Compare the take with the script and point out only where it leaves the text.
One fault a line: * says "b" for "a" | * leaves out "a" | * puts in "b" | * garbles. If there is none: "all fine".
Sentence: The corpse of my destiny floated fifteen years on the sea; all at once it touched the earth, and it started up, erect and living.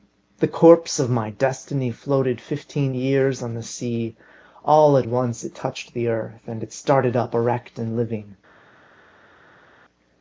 all fine